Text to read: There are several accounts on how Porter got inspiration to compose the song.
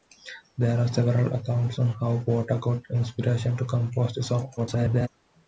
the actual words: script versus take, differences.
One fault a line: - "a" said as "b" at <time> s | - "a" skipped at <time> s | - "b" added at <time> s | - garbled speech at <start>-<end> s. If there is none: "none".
- garbled speech at 4.6-5.1 s